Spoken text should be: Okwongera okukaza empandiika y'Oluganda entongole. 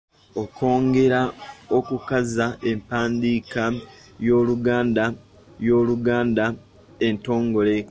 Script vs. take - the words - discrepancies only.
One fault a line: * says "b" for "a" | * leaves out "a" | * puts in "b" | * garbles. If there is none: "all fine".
* puts in "y'Oluganda"